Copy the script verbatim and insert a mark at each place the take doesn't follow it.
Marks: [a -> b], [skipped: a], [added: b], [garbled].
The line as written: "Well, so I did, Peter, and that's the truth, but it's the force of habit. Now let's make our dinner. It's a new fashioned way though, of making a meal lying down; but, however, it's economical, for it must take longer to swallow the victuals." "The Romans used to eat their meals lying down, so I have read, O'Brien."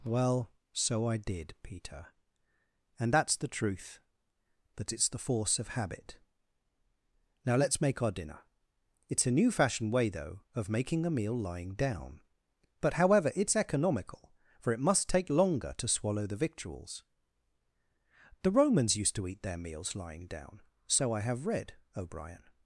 "Well, so I did, Peter, and that's the truth, [but -> that] it's the force of habit. Now let's make our dinner. It's a new fashioned way though, of making a meal lying down; but, however, it's economical, for it must take longer to swallow the victuals." "The Romans used to eat their meals lying down, so I have read, O'Brien."